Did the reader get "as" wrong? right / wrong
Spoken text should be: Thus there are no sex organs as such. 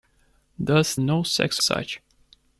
wrong